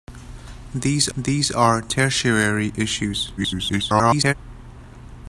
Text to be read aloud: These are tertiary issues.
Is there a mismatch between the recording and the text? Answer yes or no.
yes